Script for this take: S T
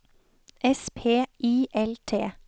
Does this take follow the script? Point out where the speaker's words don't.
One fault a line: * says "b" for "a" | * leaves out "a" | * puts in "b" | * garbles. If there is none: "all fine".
* puts in "P I L"